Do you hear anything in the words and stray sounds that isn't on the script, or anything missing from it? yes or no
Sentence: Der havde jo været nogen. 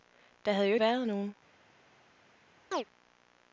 yes